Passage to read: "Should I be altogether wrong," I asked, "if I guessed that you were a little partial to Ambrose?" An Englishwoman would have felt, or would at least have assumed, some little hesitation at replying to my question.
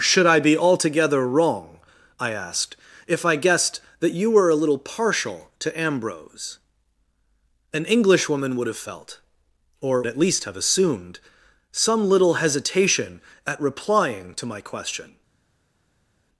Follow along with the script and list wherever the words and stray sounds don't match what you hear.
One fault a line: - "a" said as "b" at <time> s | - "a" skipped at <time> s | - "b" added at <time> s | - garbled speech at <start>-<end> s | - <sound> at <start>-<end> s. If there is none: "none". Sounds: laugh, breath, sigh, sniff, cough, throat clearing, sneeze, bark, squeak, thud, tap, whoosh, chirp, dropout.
- "would" skipped at 10.0 s